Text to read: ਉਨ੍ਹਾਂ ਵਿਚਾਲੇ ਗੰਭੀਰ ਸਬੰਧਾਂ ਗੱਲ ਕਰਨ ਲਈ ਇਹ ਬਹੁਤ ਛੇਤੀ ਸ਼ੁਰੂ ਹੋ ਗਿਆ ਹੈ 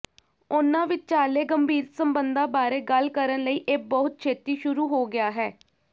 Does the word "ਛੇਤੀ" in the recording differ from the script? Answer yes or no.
no